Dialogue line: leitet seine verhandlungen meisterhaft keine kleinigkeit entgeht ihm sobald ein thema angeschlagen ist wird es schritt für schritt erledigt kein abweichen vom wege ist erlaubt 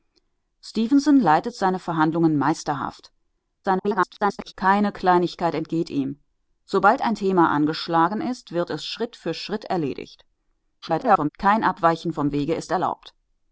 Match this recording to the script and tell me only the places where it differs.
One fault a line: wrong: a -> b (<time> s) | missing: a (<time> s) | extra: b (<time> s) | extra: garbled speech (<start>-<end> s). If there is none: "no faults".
extra: garbled speech (3.6-4.5 s)
extra: garbled speech (10.8-11.3 s)